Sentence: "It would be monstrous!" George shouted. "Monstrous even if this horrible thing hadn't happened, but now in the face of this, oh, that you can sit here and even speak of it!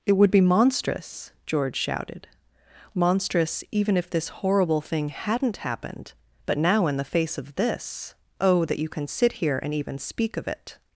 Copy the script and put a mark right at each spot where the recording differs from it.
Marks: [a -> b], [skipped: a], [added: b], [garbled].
"It would be monstrous!" George shouted. "Monstrous even if this horrible thing hadn't happened, but now in the face of this, oh, that you can sit here and even speak of it!